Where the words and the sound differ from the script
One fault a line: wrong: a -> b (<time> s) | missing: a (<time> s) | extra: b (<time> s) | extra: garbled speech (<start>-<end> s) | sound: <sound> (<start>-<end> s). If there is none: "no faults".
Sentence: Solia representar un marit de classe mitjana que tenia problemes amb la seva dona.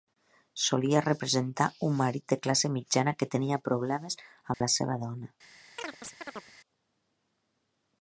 sound: dropout (4.5-4.6 s)
sound: chirp (5.8-6.5 s)